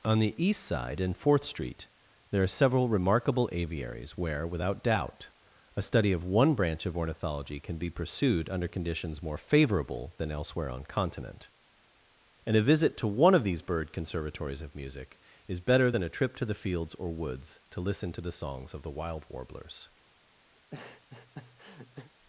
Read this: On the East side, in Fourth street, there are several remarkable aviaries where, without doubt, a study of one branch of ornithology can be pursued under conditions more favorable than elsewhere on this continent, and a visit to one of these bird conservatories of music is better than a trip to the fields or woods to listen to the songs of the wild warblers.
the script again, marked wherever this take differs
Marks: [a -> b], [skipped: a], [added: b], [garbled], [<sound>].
On the East side, in Fourth street, there are several remarkable aviaries where, without doubt, a study of one branch of ornithology can be pursued under conditions more favorable than elsewhere on [skipped: this] continent, and a visit to one of these bird conservatories of music is better than a trip to the fields or woods to listen to the songs of the wild warblers. [laugh]